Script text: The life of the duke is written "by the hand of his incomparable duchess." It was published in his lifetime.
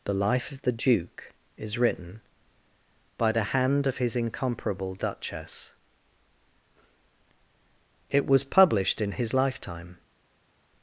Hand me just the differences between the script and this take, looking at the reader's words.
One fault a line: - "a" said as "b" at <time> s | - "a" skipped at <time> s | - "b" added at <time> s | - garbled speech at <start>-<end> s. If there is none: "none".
none